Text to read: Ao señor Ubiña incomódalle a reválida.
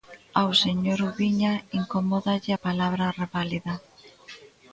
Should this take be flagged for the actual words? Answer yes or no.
yes